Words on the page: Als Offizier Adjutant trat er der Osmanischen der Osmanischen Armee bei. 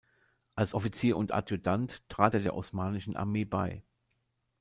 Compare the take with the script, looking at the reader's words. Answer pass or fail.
fail